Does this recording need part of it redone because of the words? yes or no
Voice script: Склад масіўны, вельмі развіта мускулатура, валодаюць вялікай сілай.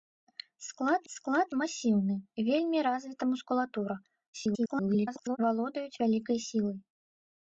yes